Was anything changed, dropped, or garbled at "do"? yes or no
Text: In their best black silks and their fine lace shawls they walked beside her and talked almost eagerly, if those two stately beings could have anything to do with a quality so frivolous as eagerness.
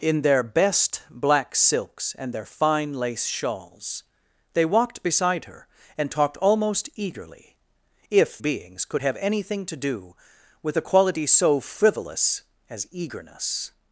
no